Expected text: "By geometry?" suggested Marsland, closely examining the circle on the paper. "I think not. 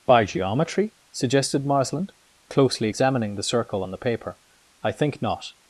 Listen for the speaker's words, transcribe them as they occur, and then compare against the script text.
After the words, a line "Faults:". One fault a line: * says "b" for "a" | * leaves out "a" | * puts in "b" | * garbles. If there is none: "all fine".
"By geometry?" suggested Marsland, closely examining the circle on the paper. "I think not.
Faults:
all fine